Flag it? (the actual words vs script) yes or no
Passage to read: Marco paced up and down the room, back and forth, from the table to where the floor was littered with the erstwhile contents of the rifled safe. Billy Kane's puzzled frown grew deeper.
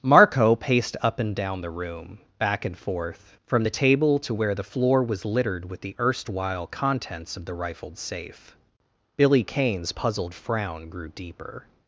no